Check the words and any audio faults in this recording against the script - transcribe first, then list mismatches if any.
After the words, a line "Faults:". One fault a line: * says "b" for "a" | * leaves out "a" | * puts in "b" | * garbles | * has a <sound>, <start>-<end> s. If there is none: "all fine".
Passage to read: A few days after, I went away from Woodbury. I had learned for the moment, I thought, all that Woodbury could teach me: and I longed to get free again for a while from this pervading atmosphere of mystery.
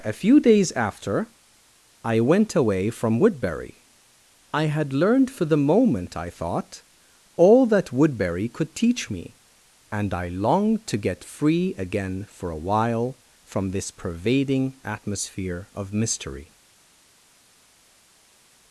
A few days after, I went away from Woodbury. I had learned for the moment, I thought, all that Woodbury could teach me: and I longed to get free again for a while from this pervading atmosphere of mystery.
Faults:
all fine